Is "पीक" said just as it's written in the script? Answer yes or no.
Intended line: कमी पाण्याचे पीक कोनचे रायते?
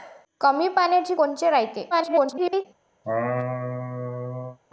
no